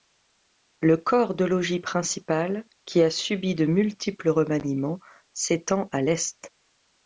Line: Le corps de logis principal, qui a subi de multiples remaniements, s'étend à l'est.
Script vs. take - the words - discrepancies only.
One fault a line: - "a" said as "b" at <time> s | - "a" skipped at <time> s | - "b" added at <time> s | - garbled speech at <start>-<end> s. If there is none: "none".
none